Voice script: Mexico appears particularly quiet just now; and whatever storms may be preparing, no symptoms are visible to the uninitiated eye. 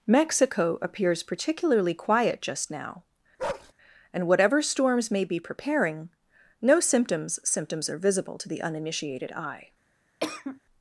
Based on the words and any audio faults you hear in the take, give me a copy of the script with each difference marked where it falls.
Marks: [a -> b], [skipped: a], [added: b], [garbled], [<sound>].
Mexico appears particularly quiet just now; [bark] and whatever storms may be preparing, no symptoms [added: symptoms] are visible to the uninitiated eye. [cough]